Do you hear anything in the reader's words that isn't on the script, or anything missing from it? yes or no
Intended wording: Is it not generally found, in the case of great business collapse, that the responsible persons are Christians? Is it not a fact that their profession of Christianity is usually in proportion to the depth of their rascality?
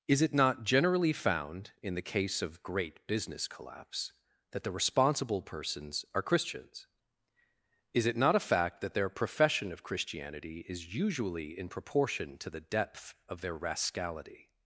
no